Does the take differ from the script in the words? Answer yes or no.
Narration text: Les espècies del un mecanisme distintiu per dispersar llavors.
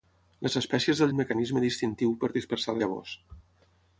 no